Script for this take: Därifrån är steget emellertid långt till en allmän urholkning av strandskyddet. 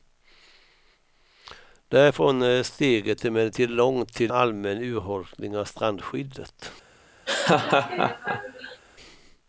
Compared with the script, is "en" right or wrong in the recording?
wrong